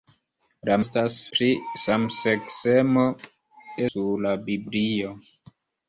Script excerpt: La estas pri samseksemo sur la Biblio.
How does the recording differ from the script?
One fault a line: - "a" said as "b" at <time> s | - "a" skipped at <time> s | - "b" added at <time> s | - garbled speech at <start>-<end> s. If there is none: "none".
none